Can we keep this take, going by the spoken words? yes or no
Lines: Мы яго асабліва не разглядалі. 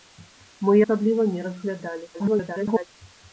no